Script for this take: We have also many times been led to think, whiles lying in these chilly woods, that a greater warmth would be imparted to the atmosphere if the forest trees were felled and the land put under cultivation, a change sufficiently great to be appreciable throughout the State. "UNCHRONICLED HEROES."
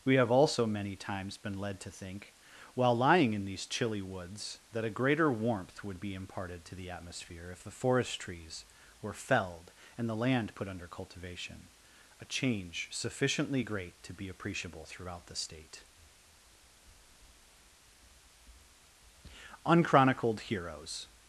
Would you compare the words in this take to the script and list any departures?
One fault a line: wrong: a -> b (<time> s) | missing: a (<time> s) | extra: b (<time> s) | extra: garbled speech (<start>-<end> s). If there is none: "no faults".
wrong: whiles -> while (2.7 s)